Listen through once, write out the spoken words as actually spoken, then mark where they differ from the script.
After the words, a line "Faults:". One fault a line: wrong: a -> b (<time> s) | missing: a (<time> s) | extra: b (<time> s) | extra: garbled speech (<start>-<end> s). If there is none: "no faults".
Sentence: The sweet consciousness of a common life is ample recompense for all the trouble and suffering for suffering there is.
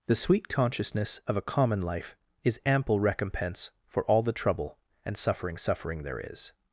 The sweet consciousness of a common life is ample recompense for all the trouble and suffering suffering there is.
Faults:
missing: for (5.6 s)